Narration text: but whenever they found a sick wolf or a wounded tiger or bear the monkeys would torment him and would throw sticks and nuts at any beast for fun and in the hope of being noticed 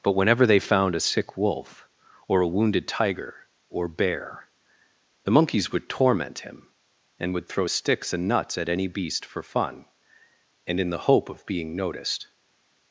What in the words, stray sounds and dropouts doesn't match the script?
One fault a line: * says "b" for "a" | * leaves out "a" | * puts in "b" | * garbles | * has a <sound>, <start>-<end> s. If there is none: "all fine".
all fine